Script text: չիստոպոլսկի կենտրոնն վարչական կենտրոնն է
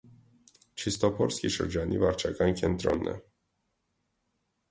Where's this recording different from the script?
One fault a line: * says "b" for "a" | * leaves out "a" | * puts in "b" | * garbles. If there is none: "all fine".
* says "շրջանի" for "կենտրոնն"